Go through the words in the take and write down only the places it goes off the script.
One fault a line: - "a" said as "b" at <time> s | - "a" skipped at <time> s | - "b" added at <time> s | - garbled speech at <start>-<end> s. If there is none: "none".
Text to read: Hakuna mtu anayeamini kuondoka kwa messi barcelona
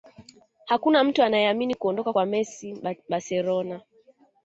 none